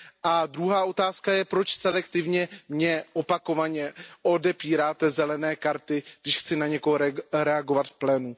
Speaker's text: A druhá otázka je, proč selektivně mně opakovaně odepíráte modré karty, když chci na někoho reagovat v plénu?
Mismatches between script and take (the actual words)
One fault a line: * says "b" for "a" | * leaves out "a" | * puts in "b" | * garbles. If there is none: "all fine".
all fine